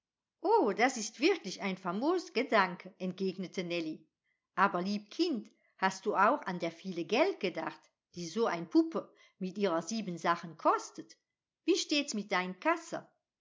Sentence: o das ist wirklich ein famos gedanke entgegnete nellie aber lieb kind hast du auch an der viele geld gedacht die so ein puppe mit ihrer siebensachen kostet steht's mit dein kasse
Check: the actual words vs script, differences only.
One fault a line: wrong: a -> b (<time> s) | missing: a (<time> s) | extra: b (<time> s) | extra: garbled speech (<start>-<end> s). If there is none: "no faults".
extra: wie (11.6 s)